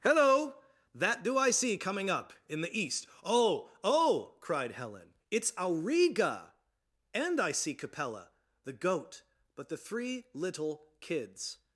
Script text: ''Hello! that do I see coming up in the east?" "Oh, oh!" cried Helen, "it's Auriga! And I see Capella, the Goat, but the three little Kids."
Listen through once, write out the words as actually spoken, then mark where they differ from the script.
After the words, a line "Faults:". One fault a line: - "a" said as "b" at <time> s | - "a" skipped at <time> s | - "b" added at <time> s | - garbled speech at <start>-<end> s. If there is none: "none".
''Hello! that do I see coming up in the east?" "Oh, oh!" cried Helen, "it's Auriga! And I see Capella, the Goat, but the three little Kids."
Faults:
none